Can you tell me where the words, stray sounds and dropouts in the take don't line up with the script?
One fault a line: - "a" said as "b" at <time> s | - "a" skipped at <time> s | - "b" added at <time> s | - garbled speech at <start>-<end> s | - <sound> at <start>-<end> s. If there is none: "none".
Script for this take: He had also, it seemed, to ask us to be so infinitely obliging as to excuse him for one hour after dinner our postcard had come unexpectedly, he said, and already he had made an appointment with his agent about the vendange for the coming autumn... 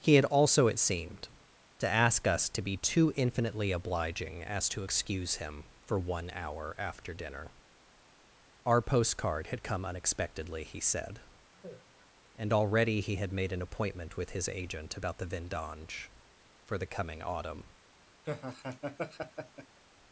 - "so" said as "too" at 2.8 s
- sigh at 11.5-12.1 s
- laugh at 18.3-19.8 s